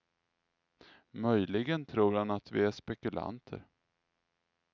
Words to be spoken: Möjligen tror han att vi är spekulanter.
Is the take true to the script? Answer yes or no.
yes